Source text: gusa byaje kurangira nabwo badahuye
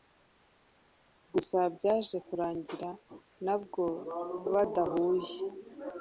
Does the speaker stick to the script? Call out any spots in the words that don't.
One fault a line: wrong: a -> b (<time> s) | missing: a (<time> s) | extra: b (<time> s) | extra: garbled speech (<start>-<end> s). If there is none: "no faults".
no faults